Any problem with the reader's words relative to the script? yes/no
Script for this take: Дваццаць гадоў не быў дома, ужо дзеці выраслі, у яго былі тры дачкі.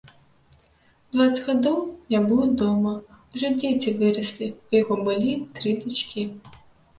no